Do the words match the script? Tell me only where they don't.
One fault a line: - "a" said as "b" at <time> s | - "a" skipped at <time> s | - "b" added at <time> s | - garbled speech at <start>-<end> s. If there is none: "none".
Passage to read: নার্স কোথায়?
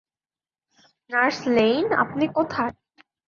- "লেইন আপনি" added at 1.6 s